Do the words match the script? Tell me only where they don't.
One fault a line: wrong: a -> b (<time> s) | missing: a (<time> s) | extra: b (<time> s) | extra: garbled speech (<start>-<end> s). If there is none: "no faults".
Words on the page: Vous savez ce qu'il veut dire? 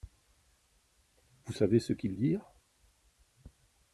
missing: veut (2.1 s)